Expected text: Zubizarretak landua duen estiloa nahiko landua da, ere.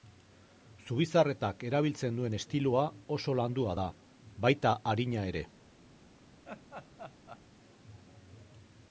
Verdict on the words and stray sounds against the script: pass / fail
fail